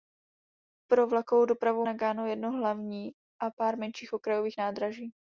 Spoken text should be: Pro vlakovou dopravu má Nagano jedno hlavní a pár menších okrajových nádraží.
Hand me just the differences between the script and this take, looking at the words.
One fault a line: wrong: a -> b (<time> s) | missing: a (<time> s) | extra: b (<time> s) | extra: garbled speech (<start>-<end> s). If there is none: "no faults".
missing: má (1.9 s)